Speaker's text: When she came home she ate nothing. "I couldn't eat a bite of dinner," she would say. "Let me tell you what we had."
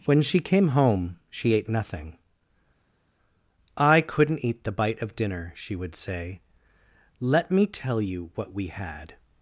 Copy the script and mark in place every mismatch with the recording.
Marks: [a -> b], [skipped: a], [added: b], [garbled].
When she came home she ate nothing. "I couldn't eat [a -> the] bite of dinner," she would say. "Let me tell you what we had."